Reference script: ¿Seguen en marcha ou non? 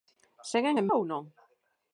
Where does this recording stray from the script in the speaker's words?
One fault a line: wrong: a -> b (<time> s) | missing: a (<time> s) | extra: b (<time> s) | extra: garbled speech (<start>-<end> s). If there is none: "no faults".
missing: marcha (0.9 s)